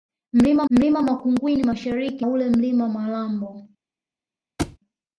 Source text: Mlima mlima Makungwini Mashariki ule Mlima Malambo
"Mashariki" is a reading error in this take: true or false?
false